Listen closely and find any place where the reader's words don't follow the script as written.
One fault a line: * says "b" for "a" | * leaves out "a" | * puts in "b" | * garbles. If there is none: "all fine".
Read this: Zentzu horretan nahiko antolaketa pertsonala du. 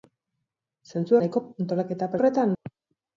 * leaves out "horretan"
* says "horretan" for "pertsonala"